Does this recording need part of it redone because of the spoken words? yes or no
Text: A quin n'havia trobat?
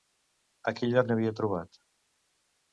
yes